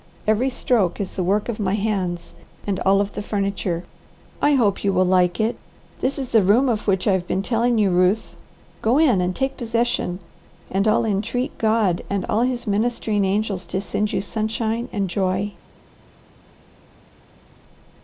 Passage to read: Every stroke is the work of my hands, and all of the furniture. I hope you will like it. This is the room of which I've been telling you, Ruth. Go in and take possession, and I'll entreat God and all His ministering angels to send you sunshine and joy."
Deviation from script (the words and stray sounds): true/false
false